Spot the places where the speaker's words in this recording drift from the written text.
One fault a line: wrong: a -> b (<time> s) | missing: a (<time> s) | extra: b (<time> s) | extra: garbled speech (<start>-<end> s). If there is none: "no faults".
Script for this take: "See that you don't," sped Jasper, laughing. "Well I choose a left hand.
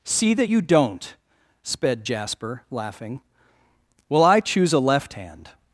no faults